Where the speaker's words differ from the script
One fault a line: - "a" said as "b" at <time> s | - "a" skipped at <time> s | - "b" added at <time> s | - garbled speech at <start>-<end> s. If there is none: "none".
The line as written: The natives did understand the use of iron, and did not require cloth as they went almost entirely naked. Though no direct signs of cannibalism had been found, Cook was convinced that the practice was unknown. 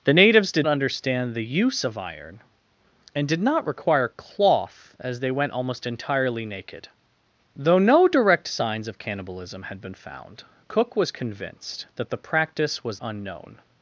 none